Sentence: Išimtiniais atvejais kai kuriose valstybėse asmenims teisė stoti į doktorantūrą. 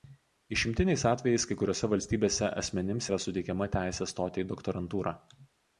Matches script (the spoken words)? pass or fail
fail